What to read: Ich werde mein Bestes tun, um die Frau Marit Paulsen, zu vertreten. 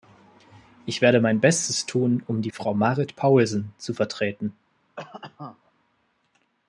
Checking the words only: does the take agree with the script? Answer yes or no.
yes